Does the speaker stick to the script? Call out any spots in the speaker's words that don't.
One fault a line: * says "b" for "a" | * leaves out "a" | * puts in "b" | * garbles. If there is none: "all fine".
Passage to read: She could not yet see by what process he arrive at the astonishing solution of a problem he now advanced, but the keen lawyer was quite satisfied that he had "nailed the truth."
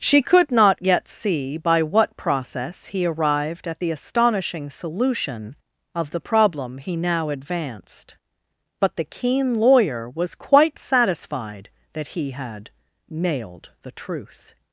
* says "arrived" for "arrive"
* says "the" for "a"